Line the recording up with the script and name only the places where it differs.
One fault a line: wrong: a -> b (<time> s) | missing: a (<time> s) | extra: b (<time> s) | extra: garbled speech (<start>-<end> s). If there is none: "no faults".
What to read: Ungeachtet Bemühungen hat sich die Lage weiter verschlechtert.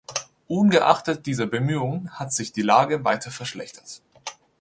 extra: dieser (1.3 s)